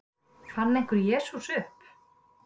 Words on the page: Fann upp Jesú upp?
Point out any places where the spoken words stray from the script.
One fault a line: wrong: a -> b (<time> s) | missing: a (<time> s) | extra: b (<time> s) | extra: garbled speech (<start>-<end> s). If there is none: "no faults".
wrong: upp -> einhver (0.8 s)